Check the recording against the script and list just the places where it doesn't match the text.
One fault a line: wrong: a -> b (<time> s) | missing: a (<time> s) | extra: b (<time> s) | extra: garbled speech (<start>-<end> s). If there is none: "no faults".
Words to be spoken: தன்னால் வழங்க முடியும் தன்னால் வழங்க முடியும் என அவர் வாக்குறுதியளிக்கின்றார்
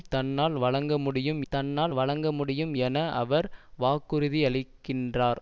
no faults